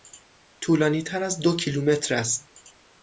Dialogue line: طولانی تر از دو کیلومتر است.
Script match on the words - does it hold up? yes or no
yes